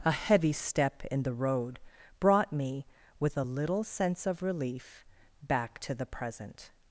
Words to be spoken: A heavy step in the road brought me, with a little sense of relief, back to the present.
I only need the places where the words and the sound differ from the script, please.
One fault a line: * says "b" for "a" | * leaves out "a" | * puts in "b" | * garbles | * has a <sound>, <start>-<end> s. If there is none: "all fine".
all fine